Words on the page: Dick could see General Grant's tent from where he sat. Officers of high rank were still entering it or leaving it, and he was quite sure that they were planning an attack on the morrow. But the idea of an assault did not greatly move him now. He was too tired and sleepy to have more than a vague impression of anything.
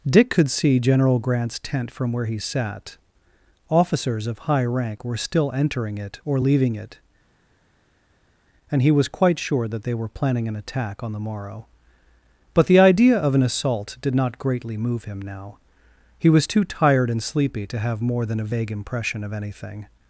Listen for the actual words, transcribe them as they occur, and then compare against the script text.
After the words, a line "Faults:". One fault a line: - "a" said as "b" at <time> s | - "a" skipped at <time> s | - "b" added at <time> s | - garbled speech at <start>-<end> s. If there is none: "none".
Dick could see General Grant's tent from where he sat. Officers of high rank were still entering it or leaving it, and he was quite sure that they were planning an attack on the morrow. But the idea of an assault did not greatly move him now. He was too tired and sleepy to have more than a vague impression of anything.
Faults:
none